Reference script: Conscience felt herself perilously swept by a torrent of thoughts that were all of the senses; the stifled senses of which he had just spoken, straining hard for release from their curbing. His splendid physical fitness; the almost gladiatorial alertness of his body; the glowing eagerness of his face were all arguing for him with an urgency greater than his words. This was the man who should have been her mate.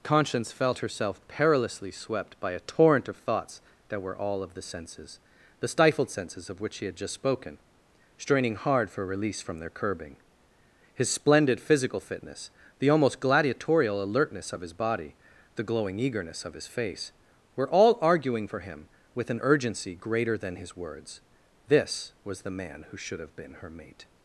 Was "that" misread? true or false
false